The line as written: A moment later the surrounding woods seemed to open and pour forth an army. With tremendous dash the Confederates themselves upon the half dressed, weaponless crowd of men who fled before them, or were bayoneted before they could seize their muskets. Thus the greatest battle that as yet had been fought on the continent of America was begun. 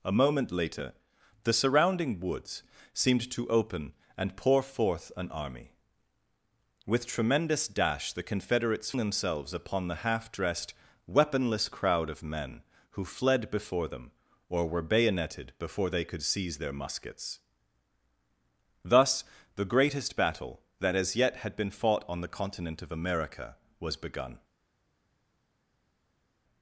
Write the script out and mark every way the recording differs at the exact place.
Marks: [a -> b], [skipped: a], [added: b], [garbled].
A moment later the surrounding woods seemed to open and pour forth an army. With tremendous dash the Confederates themselves upon the half dressed, weaponless crowd of men who fled before them, or were bayoneted before they could seize their muskets. Thus the greatest battle that as yet had been fought on the continent of America was begun.